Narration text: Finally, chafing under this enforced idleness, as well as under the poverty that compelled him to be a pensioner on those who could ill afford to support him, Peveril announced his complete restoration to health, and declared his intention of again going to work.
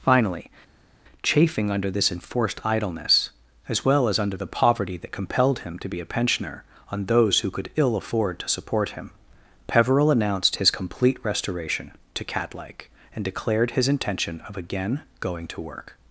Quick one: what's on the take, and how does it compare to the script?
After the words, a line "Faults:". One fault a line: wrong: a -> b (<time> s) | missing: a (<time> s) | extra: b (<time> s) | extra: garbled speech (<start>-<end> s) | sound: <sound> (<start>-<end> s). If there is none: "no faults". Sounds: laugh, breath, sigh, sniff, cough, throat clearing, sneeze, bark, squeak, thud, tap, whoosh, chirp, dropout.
Finally, chafing under this enforced idleness, as well as under the poverty that compelled him to be a pensioner on those who could ill afford to support him, Peveril announced his complete restoration to catlike, and declared his intention of again going to work.
Faults:
wrong: health -> catlike (12.2 s)